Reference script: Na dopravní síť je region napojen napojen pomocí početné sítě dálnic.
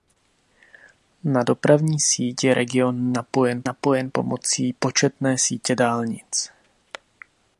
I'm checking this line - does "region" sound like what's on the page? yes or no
yes